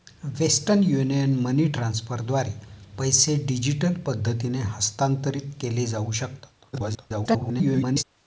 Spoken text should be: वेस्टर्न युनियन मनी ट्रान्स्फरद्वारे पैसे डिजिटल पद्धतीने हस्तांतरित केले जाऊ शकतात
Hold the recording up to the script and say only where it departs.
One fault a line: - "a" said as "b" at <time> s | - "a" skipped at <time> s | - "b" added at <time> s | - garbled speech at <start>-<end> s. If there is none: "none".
- garbled speech at 6.7-8.0 s